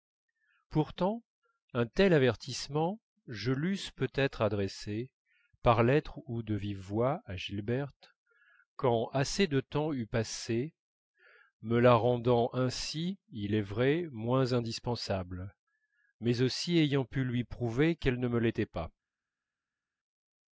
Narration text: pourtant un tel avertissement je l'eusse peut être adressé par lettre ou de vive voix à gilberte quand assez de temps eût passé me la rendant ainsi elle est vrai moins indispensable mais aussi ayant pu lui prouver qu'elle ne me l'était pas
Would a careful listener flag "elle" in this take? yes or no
yes